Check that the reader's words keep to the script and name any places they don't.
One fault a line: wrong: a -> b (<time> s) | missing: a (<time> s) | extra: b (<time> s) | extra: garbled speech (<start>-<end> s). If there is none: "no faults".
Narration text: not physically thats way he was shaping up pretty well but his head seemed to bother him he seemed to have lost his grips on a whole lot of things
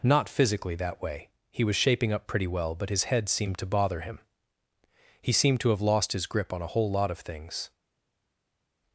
wrong: thats -> that (0.8 s)
wrong: grips -> grip (6.3 s)